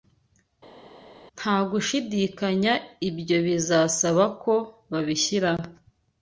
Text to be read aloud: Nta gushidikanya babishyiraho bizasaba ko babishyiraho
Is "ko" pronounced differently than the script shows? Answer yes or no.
no